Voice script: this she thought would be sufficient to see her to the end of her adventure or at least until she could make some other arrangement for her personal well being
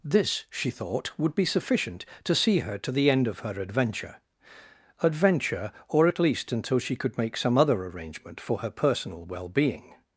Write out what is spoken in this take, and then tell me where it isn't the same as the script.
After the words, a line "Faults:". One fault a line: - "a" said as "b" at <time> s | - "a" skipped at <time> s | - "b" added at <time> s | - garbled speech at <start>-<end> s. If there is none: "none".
this she thought would be sufficient to see her to the end of her adventure adventure or at least until she could make some other arrangement for her personal well being
Faults:
- "adventure" added at 5.0 s